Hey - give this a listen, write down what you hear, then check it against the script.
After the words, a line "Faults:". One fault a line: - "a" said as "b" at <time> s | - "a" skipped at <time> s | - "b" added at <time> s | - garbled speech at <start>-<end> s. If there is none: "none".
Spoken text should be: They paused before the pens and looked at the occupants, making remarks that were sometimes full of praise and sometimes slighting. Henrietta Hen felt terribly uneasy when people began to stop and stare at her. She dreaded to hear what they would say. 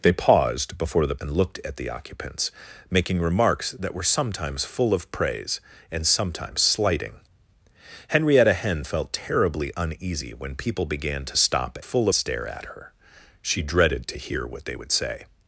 They paused before the and looked at the occupants, making remarks that were sometimes full of praise and sometimes slighting. Henrietta Hen felt terribly uneasy when people began to stop full stare at her. She dreaded to hear what they would say.
Faults:
- "pens" skipped at 1.1 s
- "and" said as "full" at 11.8 s